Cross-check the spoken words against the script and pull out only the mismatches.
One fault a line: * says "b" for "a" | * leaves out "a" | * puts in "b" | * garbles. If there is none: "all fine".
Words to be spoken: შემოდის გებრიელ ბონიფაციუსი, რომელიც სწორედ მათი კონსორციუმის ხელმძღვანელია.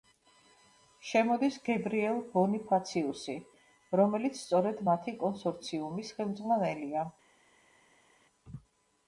all fine